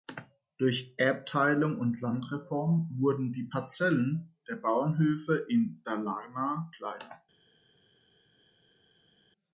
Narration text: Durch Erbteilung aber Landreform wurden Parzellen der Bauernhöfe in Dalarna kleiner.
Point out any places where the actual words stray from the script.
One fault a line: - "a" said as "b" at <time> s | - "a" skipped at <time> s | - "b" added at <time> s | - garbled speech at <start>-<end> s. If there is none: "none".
- "aber" said as "und" at 1.8 s
- "die" added at 3.3 s